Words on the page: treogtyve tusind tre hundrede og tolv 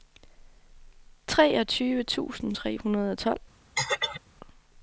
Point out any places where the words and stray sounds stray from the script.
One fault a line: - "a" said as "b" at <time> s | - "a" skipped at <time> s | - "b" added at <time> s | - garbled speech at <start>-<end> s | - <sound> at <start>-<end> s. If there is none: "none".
- throat clearing at 3.8-4.2 s